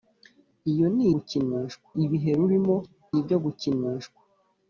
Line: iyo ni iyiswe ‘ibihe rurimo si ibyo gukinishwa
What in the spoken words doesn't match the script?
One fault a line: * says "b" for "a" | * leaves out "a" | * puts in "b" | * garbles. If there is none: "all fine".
* says "gukinishwa" for "iyiswe"
* leaves out "si"